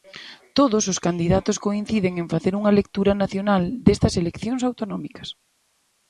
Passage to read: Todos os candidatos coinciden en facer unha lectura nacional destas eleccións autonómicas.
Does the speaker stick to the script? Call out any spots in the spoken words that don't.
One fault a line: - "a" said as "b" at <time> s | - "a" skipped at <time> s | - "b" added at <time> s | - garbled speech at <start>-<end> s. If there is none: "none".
none